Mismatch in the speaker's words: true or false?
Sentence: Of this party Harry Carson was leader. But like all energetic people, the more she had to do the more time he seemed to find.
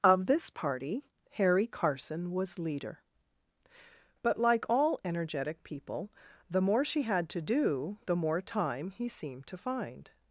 false